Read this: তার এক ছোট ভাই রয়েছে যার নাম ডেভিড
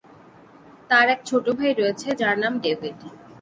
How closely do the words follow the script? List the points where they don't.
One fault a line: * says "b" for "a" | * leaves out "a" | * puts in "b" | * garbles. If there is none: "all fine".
all fine